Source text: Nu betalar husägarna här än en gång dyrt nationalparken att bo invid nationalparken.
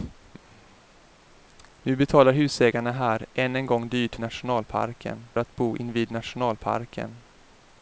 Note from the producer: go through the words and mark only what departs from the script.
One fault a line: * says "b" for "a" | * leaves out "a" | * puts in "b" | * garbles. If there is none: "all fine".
all fine